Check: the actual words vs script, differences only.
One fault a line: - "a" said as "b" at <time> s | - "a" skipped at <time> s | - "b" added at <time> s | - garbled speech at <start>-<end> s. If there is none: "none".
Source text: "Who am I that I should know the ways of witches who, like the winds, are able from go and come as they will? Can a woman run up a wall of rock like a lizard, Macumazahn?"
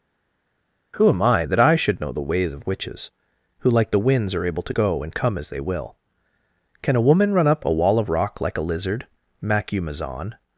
- "from" said as "to" at 4.6 s